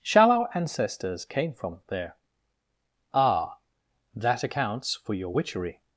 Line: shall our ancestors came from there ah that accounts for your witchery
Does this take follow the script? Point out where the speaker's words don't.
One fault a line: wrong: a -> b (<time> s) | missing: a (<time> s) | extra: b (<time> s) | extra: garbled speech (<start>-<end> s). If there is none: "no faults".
no faults